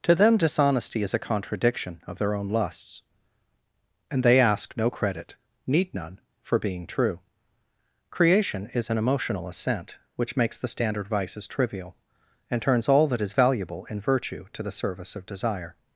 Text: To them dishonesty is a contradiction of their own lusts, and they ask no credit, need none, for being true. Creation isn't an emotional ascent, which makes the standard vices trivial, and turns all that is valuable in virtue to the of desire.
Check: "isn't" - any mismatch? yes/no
yes